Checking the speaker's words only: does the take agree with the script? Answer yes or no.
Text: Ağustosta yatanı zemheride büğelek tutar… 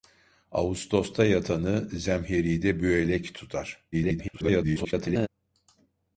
no